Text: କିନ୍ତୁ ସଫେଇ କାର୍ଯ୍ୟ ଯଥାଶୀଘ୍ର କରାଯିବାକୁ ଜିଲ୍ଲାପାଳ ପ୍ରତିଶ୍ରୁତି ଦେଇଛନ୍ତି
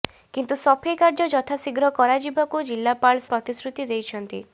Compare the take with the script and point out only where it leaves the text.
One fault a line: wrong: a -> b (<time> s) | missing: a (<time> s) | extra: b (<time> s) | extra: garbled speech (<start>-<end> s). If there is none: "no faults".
no faults